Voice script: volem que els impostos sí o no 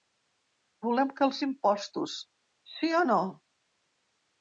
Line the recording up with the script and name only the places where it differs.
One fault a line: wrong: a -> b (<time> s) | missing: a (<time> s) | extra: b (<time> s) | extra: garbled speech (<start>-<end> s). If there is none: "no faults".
no faults